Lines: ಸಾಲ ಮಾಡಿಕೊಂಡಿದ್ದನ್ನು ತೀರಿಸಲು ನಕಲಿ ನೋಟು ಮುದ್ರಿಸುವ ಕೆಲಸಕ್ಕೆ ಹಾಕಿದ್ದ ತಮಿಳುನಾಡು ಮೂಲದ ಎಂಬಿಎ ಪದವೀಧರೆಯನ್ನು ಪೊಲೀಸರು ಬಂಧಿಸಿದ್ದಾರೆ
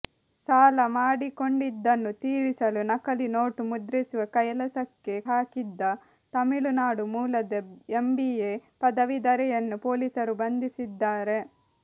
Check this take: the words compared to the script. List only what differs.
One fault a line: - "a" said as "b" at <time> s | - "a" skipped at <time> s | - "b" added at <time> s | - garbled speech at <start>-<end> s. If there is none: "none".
none